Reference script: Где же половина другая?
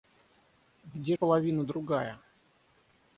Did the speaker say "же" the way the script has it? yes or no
no